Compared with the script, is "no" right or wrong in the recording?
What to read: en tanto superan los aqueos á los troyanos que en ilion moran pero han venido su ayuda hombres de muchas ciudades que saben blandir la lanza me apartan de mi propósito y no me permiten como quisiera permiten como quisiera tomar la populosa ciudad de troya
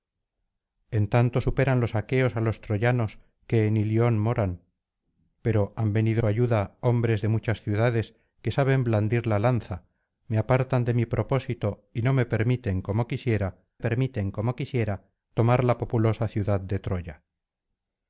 right